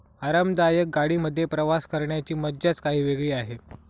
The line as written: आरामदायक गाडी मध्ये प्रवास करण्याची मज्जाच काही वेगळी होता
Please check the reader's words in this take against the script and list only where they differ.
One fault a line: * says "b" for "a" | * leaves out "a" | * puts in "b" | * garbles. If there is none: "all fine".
* says "आहे" for "होता"